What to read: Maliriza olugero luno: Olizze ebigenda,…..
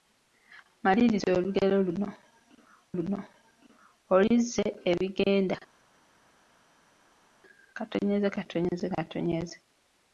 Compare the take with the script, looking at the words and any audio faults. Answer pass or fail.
fail